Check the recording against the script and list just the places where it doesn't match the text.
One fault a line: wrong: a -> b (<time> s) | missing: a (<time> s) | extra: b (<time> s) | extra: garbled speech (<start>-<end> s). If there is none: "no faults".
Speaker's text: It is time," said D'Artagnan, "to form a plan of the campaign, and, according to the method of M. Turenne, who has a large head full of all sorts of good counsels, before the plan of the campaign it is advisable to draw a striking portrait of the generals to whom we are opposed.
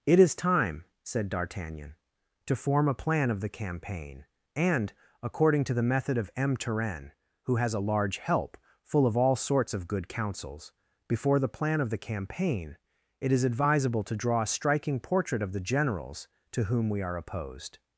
wrong: head -> help (8.2 s)